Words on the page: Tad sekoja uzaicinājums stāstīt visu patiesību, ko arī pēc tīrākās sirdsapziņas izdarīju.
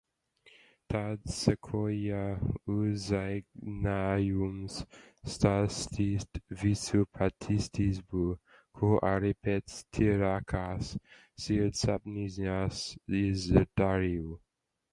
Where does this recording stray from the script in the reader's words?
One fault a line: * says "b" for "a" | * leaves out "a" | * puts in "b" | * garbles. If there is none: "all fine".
all fine